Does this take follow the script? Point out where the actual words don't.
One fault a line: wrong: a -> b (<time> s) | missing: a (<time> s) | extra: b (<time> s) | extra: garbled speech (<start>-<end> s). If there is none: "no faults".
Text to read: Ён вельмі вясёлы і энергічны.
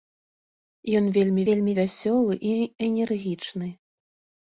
extra: вельмі (1.5 s)